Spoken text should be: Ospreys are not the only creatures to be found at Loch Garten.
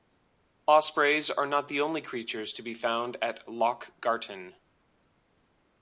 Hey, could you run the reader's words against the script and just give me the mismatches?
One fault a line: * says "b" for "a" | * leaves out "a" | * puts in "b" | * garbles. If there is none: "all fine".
all fine